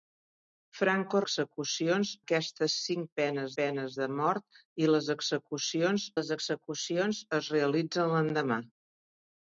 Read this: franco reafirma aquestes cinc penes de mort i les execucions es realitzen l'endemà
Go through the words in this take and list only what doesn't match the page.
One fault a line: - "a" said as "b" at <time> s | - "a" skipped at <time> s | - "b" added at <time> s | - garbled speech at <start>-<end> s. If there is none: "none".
- "reafirma" said as "execucions" at 1.2 s
- "penes" added at 3.6 s
- "les execucions" added at 6.2 s